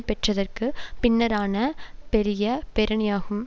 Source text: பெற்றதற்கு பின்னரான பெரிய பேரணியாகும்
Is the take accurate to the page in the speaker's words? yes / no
yes